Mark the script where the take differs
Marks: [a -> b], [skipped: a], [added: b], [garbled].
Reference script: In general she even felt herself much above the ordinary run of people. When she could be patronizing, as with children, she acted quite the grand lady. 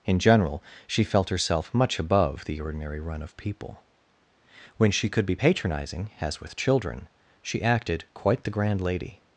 In general she [skipped: even] felt herself much above the ordinary run of people. When she could be patronizing, as with children, she acted quite the grand lady.